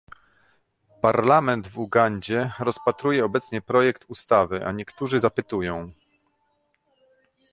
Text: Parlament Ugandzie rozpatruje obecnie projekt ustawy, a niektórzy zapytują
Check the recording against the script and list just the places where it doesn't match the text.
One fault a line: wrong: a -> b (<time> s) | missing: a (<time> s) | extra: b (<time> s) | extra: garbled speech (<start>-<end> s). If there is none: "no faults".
extra: w (1.7 s)